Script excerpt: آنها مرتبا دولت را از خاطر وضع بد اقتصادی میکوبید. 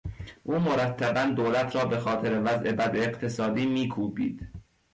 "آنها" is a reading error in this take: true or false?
true